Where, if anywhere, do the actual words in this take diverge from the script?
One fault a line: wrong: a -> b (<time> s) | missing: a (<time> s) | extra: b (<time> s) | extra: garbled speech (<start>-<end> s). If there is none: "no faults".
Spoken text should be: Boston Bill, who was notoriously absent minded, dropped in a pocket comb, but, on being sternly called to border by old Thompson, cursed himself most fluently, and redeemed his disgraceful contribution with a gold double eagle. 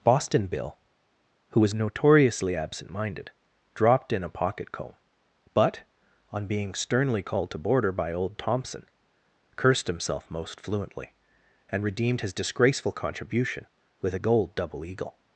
no faults